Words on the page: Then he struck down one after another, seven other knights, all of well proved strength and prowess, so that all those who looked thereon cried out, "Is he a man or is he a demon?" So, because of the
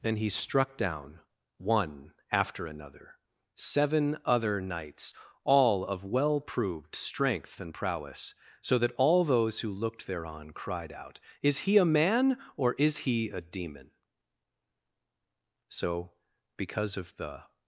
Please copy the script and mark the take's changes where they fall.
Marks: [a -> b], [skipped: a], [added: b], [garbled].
Then he struck down one after another, seven other knights, all of well proved strength and prowess, so that all those who looked thereon cried out, "Is he a man or is he a demon?" So, because of the